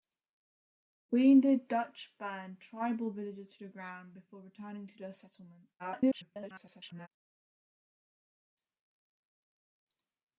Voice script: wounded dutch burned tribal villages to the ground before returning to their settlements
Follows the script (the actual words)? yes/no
no